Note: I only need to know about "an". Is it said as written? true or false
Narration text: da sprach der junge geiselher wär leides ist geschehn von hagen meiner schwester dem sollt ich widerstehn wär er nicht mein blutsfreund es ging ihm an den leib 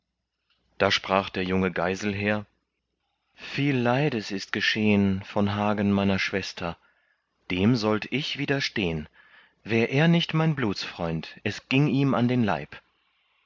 true